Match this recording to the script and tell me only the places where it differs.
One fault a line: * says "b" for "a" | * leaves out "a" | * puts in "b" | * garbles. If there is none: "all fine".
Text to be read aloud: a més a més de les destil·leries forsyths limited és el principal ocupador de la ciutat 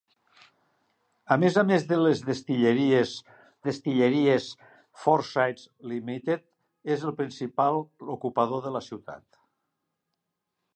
* puts in "destil·leries"